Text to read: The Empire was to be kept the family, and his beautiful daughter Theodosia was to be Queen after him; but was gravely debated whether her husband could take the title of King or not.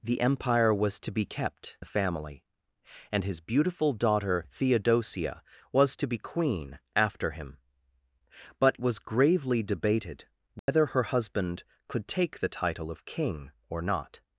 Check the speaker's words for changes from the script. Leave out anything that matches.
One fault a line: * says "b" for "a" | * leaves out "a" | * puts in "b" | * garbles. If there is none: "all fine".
all fine